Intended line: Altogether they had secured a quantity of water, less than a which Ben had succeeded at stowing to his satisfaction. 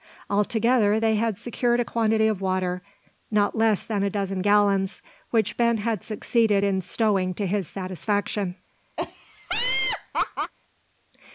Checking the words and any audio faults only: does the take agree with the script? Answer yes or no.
no